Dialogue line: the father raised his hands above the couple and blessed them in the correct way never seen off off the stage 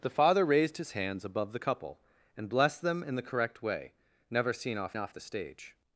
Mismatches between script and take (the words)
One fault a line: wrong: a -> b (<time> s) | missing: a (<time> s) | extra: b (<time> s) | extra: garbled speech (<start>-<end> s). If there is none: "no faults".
no faults